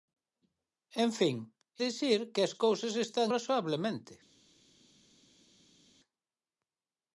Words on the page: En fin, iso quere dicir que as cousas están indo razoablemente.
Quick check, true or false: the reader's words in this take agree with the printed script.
false